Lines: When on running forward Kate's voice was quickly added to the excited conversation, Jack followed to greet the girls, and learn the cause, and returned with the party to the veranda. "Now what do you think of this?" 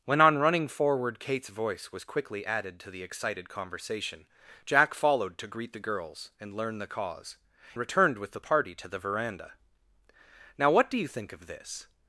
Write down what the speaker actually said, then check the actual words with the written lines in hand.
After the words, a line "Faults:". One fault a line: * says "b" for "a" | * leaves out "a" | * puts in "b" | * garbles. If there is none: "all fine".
When on running forward Kate's voice was quickly added to the excited conversation, Jack followed to greet the girls, and learn the cause, returned with the party to the veranda. "Now what do you think of this?"
Faults:
* leaves out "and"